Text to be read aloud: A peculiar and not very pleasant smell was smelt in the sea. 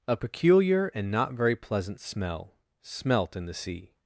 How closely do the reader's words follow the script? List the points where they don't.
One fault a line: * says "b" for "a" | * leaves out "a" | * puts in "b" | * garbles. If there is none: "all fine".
* leaves out "was"